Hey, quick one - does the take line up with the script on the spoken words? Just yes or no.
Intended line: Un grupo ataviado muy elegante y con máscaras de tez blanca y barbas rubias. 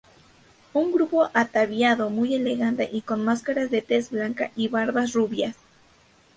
yes